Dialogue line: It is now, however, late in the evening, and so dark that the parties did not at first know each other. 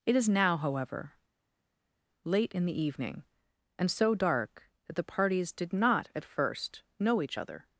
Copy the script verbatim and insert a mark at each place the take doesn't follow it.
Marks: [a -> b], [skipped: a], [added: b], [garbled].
It is now, however, late in the evening, and so dark that the parties did not at first know each other.